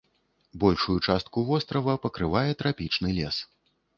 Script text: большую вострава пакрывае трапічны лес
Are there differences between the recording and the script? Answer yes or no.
yes